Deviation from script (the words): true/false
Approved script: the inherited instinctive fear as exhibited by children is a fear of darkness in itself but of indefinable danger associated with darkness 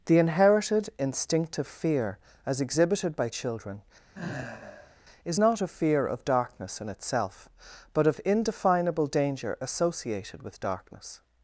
true